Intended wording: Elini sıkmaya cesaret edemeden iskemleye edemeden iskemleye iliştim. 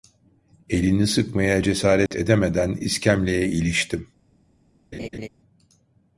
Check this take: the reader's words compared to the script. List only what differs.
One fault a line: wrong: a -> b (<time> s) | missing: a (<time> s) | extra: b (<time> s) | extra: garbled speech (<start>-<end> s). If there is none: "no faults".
missing: edemeden iskemleye (3.5 s)